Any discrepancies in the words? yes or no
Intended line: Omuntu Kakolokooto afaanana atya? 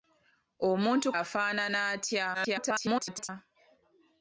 yes